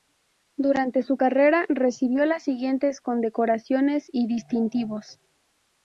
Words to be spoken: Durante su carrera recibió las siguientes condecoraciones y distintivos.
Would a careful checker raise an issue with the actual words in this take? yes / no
no